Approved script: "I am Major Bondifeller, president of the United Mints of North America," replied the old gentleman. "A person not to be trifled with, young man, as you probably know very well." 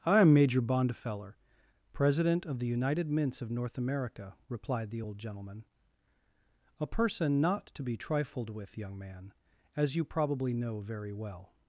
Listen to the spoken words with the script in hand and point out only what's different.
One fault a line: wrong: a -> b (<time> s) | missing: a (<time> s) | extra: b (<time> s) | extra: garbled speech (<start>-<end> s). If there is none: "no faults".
no faults